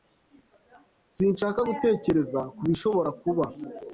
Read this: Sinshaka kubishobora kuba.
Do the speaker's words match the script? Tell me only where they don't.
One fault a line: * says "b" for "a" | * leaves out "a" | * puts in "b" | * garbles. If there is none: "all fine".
* puts in "gutekereza"